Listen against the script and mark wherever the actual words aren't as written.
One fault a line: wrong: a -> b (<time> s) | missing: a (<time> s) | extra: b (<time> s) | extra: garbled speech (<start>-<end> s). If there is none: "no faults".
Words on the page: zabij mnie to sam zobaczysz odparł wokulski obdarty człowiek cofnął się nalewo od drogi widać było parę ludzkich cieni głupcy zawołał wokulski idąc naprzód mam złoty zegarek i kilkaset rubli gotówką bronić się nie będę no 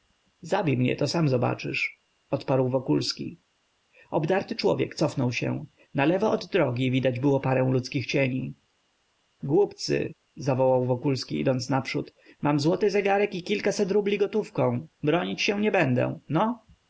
no faults